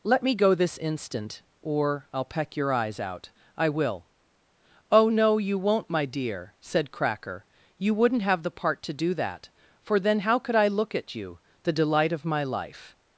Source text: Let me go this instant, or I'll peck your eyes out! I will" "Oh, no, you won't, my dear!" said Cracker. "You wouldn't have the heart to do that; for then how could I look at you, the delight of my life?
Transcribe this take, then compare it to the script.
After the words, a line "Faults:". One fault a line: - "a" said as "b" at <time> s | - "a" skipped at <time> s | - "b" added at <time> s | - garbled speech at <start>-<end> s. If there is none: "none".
Let me go this instant, or I'll peck your eyes out! I will" "Oh, no, you won't, my dear!" said Cracker. "You wouldn't have the part to do that; for then how could I look at you, the delight of my life?
Faults:
- "heart" said as "part" at 8.5 s